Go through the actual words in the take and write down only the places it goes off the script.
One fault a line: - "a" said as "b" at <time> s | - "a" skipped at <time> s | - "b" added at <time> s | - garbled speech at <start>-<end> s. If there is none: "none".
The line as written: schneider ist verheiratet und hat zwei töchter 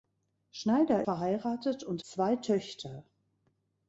- "ist" skipped at 1.0 s
- "hat" skipped at 2.0 s